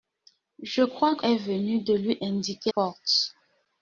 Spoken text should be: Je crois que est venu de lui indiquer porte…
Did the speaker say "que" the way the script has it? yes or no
yes